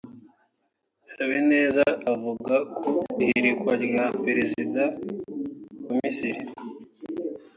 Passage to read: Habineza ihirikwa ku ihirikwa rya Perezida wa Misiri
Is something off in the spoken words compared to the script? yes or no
yes